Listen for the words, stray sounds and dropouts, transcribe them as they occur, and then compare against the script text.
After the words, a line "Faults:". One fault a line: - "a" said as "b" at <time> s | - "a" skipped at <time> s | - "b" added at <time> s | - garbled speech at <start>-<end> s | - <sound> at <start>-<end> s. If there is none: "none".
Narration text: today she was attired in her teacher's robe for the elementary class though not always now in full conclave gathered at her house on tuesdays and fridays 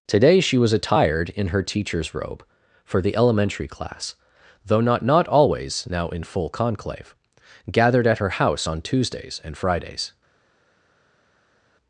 today she was attired in her teacher's robe for the elementary class though not not always now in full conclave gathered at her house on tuesdays and fridays
Faults:
- "not" added at 5.0 s